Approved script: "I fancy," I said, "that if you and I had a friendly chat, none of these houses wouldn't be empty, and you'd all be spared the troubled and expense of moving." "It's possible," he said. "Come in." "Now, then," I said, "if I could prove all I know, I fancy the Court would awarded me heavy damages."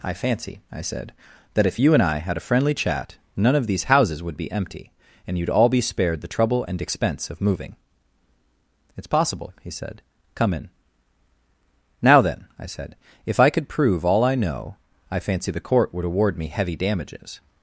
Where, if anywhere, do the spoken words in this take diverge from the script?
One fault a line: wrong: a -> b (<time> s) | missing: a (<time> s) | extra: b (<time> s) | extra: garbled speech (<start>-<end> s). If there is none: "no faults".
wrong: wouldn't -> would (4.2 s)
wrong: troubled -> trouble (6.3 s)
wrong: awarded -> award (16.0 s)